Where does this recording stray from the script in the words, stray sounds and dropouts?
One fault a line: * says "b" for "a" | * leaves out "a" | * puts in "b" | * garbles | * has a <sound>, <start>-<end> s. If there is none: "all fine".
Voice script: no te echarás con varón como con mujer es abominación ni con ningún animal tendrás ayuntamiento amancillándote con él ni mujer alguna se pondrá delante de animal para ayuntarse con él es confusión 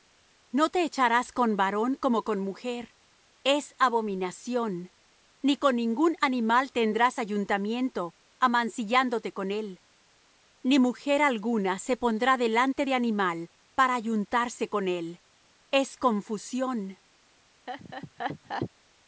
* has a laugh, 17.7-18.7 s